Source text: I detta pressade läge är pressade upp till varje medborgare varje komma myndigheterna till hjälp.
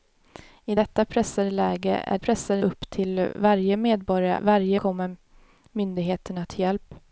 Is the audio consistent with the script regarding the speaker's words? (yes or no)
yes